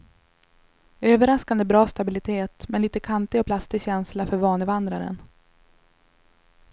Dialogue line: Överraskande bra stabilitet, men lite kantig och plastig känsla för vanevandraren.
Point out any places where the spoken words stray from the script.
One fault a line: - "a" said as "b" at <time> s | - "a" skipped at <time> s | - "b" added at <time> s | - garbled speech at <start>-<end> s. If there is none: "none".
none